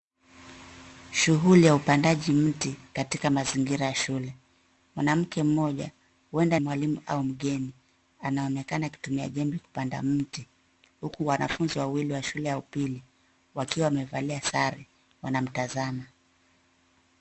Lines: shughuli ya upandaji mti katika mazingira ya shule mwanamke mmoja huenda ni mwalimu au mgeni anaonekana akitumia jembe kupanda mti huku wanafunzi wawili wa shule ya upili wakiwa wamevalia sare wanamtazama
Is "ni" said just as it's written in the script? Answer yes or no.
no